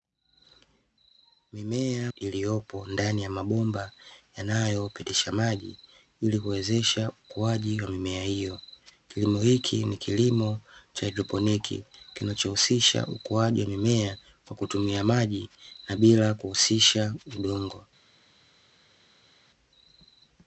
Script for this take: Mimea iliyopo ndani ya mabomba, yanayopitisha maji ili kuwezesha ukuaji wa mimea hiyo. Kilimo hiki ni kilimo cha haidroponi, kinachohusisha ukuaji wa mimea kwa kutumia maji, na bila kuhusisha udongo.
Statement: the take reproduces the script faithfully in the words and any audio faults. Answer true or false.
true